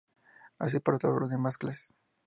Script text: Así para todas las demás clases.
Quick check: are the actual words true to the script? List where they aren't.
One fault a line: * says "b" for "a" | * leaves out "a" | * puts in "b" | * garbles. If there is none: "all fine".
all fine